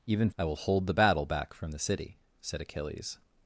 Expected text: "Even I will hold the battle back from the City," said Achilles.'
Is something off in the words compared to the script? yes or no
no